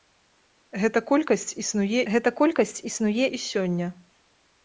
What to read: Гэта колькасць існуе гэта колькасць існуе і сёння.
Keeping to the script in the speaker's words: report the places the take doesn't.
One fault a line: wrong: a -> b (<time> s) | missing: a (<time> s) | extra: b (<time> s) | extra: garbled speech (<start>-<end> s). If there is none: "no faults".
no faults